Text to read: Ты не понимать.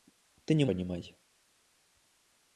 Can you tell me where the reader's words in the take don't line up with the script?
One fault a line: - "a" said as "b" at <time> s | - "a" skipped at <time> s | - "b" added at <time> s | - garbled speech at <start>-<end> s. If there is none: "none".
none